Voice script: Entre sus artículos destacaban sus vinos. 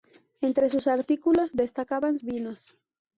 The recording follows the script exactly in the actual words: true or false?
false